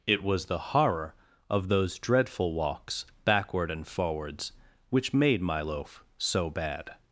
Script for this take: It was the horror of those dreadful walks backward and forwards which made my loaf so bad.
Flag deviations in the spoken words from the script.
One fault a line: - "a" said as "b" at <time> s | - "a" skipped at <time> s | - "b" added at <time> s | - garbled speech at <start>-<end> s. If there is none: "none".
none